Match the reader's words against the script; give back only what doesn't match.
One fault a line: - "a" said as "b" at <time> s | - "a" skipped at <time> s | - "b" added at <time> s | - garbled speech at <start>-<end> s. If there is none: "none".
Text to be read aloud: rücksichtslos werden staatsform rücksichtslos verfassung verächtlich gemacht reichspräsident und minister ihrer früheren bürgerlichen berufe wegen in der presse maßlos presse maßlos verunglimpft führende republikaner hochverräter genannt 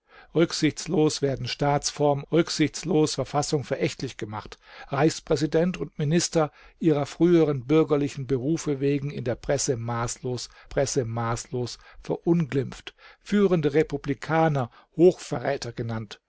none